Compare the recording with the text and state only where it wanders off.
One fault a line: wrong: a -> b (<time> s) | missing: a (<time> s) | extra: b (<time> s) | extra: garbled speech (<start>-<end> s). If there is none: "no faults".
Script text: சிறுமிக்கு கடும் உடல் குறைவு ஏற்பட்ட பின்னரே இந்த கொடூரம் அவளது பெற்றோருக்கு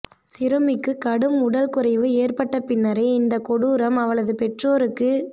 no faults